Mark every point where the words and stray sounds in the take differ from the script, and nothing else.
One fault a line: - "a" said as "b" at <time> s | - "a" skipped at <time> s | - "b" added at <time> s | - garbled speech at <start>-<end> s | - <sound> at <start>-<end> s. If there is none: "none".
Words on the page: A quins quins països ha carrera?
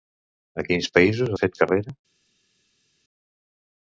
- "quins" skipped at 0.9 s
- "fet" added at 1.4 s